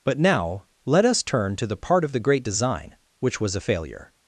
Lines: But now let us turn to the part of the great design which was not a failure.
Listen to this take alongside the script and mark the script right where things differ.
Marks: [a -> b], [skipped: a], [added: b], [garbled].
But now let us turn to the part of the great design which was [skipped: not] a failure.